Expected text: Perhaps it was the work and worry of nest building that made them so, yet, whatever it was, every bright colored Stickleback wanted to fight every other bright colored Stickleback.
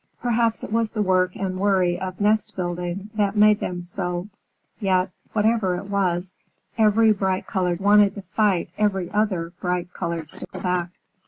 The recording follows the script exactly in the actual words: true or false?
false